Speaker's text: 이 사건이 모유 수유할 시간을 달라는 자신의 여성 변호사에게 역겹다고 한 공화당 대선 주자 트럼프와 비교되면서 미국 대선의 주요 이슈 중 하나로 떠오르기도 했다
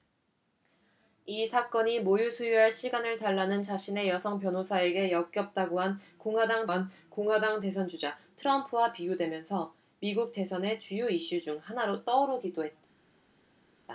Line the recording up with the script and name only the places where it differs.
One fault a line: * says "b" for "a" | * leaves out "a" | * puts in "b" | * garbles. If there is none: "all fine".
* puts in "한 공화당"